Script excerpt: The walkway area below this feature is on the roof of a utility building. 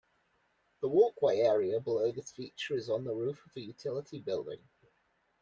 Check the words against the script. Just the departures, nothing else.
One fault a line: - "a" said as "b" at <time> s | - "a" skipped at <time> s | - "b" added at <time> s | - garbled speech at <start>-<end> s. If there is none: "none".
none